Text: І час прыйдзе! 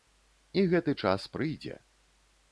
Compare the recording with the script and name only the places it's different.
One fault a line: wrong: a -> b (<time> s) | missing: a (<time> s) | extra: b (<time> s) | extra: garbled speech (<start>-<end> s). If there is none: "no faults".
extra: гэты (0.7 s)